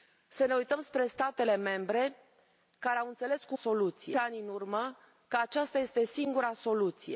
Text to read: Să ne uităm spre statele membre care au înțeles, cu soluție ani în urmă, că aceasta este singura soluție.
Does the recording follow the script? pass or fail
pass